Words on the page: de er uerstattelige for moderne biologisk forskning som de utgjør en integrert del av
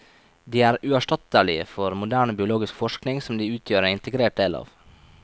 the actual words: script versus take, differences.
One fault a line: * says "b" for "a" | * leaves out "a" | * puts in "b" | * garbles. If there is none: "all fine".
all fine